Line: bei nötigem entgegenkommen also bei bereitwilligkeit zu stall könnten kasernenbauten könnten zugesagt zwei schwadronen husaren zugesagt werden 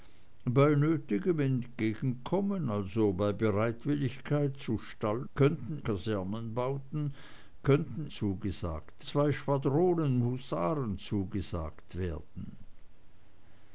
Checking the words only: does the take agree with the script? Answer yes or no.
yes